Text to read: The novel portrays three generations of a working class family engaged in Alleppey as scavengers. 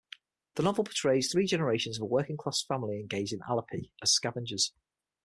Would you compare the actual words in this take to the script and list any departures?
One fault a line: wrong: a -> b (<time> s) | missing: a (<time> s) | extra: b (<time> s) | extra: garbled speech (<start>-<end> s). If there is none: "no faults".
no faults